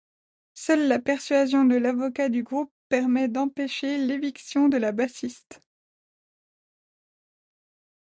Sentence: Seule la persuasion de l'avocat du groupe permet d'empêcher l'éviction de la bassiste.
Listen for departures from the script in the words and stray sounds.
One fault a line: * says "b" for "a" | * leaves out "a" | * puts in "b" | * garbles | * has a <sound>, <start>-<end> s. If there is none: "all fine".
all fine